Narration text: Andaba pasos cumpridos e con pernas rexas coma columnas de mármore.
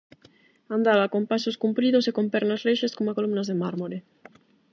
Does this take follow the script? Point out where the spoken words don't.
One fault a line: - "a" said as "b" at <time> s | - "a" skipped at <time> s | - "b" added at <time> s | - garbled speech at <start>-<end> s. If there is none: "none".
- "con" added at 1.1 s